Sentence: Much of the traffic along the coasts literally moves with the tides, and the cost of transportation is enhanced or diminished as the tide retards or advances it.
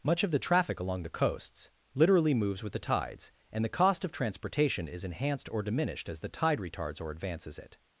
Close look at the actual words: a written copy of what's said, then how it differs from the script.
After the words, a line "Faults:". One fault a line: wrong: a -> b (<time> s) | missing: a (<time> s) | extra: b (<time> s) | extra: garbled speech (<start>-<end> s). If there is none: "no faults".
Much of the traffic along the coasts literally moves with the tides, and the cost of transportation is enhanced or diminished as the tide retards or advances it.
Faults:
no faults